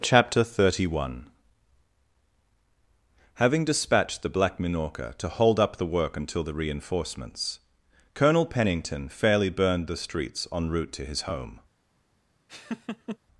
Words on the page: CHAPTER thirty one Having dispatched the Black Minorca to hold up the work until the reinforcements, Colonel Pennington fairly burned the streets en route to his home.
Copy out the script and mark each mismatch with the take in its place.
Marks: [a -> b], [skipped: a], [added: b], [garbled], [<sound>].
CHAPTER thirty one Having dispatched the Black Minorca to hold up the work until the reinforcements, Colonel Pennington fairly burned the streets en route to his home. [laugh]